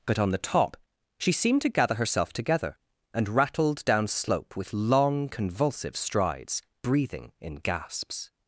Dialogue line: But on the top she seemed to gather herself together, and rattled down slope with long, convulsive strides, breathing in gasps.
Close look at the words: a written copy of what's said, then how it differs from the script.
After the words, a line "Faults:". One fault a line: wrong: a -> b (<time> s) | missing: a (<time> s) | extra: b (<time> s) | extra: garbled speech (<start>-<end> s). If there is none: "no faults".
But on the top she seemed to gather herself together, and rattled down slope with long, convulsive strides, breathing in gasps.
Faults:
no faults